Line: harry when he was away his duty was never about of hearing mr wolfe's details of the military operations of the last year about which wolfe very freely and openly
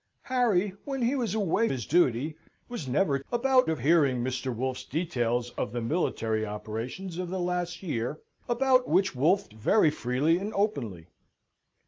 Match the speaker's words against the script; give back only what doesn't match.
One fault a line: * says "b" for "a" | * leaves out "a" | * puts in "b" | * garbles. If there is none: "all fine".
all fine